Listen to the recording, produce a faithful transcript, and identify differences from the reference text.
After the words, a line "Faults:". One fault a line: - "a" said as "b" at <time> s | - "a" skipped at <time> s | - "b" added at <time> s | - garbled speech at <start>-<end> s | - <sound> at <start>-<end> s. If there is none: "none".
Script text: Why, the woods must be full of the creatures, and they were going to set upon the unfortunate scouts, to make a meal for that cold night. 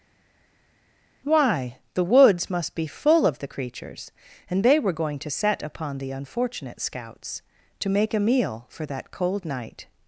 Why, the woods must be full of the creatures, and they were going to set upon the unfortunate scouts, to make a meal for that cold night.
Faults:
none